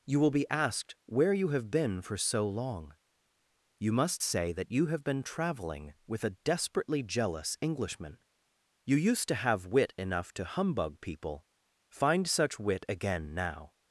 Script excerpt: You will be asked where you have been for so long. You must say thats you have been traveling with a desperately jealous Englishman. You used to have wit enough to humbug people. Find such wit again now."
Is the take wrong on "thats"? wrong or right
wrong